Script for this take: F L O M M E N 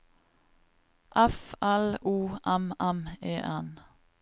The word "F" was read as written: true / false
true